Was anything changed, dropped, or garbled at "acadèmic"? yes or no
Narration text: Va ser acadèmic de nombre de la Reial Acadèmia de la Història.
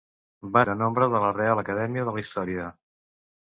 yes